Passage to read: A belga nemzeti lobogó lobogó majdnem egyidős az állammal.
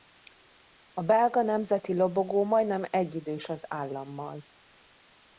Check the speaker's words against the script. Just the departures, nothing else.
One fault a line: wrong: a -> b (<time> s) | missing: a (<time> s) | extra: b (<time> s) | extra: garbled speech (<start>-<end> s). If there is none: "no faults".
missing: lobogó (2.4 s)